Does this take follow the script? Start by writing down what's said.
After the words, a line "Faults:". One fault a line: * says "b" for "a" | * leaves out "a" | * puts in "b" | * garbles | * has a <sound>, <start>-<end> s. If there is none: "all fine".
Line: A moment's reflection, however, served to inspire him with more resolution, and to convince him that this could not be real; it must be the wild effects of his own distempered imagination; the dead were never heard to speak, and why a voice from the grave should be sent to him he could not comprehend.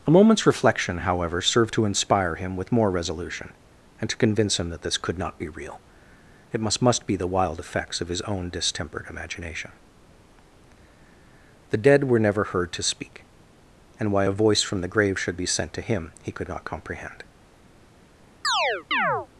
A moment's reflection, however, served to inspire him with more resolution, and to convince him that this could not be real; it must must be the wild effects of his own distempered imagination; the dead were never heard to speak, and why a voice from the grave should be sent to him he could not comprehend.
Faults:
* puts in "must"
* has a chirp, 18.4-19.3 s